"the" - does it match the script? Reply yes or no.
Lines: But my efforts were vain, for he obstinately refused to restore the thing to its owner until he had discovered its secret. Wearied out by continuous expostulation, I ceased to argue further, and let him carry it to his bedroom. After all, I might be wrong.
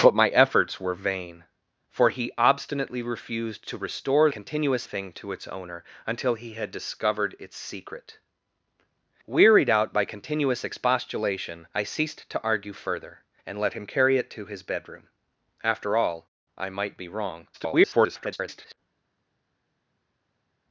no